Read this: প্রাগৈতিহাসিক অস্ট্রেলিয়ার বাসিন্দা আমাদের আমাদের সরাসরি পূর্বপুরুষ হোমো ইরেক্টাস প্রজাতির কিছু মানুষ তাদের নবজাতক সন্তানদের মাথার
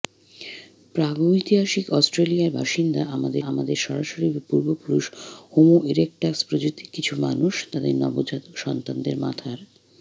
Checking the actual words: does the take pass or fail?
pass